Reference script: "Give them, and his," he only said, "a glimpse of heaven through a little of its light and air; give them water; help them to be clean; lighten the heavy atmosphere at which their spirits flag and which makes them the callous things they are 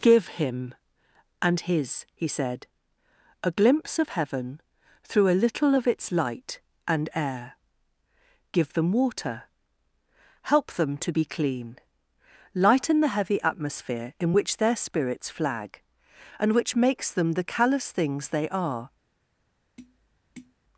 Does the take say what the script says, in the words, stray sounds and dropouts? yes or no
no